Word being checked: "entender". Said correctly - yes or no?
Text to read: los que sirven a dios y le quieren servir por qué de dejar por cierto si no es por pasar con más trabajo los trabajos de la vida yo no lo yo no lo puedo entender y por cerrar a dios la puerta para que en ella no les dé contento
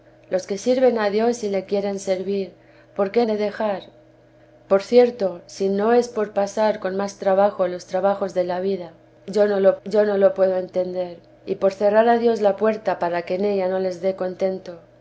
yes